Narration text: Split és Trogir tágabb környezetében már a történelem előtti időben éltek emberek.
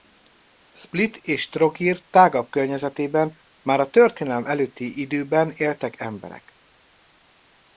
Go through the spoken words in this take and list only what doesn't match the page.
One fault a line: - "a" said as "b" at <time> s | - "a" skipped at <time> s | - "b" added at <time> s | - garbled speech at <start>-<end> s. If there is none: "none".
none